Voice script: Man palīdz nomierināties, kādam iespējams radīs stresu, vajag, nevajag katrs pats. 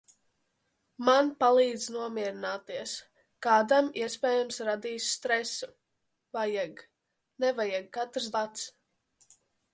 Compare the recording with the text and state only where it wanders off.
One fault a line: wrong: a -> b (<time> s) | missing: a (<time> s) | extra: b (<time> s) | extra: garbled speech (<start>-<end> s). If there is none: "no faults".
no faults